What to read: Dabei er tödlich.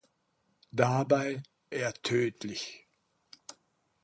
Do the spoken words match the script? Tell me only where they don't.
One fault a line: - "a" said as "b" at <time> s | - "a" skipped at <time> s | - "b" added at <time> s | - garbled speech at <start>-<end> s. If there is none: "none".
none